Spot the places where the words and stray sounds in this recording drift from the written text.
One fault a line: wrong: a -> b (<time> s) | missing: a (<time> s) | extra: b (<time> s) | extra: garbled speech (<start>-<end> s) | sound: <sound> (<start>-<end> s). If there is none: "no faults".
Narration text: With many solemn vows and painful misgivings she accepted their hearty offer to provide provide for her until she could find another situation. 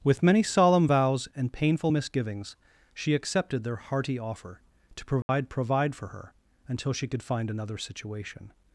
sound: dropout (5.2-5.3 s)